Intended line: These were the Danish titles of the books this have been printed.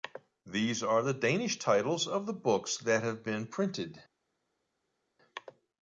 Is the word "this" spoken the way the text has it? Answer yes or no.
no